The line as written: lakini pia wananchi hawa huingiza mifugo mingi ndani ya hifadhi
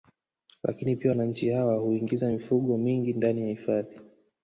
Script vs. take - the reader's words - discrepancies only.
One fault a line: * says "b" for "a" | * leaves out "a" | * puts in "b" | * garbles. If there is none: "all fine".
all fine